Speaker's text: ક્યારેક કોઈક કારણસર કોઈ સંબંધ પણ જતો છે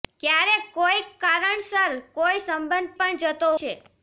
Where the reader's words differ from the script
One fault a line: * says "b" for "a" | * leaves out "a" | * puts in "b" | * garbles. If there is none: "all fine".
all fine